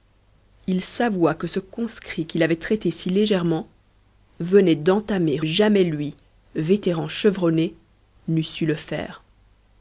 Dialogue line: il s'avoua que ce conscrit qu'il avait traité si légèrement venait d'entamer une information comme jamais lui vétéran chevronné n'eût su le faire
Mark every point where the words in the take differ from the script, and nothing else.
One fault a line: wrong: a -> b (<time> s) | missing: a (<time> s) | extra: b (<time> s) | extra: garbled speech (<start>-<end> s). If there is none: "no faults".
missing: une information comme (5.4 s)